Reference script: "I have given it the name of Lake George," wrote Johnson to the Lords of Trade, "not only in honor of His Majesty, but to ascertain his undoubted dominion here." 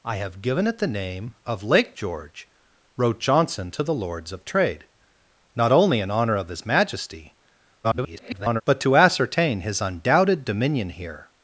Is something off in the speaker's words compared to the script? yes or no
yes